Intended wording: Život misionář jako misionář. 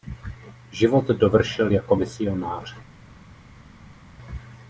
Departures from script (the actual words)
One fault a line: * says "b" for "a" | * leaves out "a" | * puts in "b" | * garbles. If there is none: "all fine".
* says "dovršil" for "misionář"